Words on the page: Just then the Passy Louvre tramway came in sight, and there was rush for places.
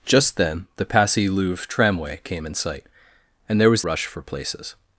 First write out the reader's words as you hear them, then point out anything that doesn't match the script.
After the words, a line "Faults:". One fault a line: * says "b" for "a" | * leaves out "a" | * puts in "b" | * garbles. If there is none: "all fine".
Just then the Passy Louvre tramway came in sight, and there was rush for places.
Faults:
all fine